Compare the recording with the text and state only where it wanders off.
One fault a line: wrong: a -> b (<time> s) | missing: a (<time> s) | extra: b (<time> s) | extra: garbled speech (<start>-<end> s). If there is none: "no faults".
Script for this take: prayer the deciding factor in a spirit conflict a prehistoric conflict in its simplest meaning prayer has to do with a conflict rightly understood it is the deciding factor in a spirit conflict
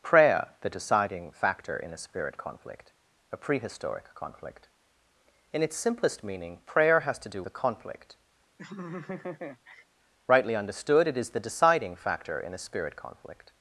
missing: with (7.4 s)